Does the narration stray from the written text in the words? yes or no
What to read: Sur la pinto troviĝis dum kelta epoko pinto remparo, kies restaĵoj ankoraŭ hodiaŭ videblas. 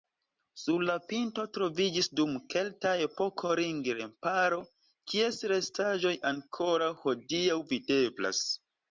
yes